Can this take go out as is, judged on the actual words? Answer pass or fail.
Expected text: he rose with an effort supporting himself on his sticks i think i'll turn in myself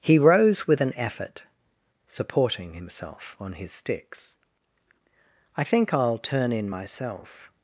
pass